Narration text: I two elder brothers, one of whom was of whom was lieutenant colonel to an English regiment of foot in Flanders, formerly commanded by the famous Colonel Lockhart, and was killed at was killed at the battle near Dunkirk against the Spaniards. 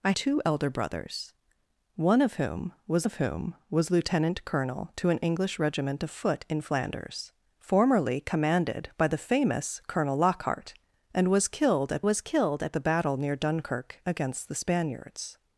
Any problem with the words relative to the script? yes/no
no